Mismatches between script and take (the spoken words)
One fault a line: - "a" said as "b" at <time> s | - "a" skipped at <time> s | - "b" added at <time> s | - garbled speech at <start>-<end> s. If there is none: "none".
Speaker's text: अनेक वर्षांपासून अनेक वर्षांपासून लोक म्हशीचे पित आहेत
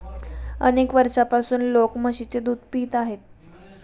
- "अनेक वर्षांपासून" skipped at 1.6 s
- "दूध" added at 2.4 s